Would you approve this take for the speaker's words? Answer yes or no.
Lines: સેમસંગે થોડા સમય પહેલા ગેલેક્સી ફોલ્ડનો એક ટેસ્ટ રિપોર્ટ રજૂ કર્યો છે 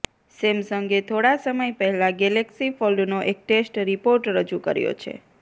yes